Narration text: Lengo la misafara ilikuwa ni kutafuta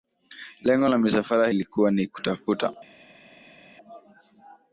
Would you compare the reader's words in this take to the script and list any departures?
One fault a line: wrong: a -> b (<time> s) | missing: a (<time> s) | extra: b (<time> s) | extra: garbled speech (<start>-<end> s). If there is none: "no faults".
no faults